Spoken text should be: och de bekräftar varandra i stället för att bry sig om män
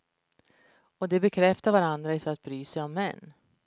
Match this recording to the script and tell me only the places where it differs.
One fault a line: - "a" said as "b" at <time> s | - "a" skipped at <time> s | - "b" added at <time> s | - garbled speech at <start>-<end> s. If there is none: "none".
- "stället" skipped at 2.2 s